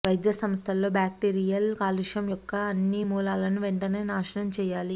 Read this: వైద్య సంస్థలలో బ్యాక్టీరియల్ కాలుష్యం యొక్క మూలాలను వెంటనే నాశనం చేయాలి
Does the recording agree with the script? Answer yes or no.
no